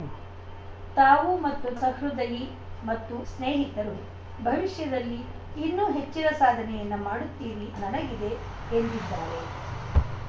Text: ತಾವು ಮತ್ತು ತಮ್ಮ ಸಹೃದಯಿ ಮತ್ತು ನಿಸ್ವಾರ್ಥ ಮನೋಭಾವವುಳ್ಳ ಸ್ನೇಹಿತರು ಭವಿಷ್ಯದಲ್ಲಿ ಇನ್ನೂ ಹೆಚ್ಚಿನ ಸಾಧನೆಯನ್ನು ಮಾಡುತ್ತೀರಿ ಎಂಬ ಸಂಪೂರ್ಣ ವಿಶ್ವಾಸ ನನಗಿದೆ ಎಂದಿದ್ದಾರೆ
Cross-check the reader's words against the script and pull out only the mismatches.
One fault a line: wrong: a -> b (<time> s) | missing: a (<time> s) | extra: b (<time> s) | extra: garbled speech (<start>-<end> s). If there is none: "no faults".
missing: ತಮ್ಮ (1.7 s)
missing: ನಿಸ್ವಾರ್ಥ ಮನೋಭಾವವುಳ್ಳ (3.1 s)
missing: ಎಂಬ ಸಂಪೂರ್ಣ ವಿಶ್ವಾಸ (7.7 s)